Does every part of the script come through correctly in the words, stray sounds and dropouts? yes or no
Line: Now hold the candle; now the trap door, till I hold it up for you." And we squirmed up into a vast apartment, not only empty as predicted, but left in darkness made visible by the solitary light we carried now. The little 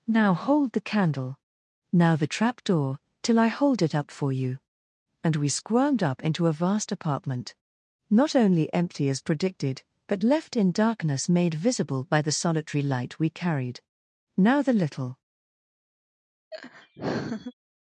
no